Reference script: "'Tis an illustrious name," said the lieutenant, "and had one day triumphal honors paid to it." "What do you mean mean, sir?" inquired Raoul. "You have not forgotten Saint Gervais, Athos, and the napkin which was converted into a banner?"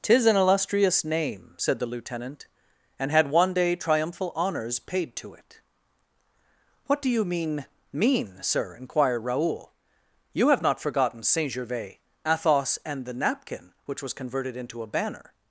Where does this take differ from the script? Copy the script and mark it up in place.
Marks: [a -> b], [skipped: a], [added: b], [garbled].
"'Tis an illustrious name," said the lieutenant, "and had one day triumphal honors paid to it." "What do you mean mean, sir?" inquired Raoul. "You have not forgotten Saint Gervais, Athos, and the napkin which was converted into a banner?"